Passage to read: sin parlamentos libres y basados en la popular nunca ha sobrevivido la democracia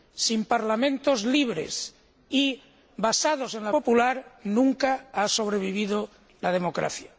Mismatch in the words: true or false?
false